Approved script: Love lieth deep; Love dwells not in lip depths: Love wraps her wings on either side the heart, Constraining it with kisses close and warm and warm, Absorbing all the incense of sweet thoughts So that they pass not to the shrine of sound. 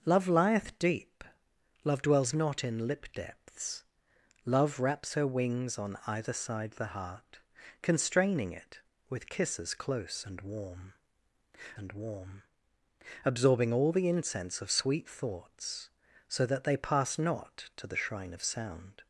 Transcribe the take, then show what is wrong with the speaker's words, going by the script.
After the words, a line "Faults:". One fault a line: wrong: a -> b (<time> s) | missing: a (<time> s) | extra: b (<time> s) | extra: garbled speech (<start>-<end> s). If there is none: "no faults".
Love lieth deep; Love dwells not in lip depths: Love wraps her wings on either side the heart, Constraining it with kisses close and warm and warm, Absorbing all the incense of sweet thoughts So that they pass not to the shrine of sound.
Faults:
no faults